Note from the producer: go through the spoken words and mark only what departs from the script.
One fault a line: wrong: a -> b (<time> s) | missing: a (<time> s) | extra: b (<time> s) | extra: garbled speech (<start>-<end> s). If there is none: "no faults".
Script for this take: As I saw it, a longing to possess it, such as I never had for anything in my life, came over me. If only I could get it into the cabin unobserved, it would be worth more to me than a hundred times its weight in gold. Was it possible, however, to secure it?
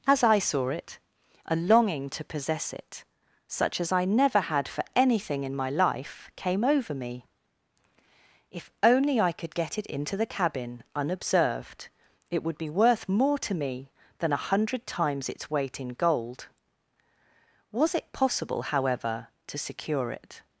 no faults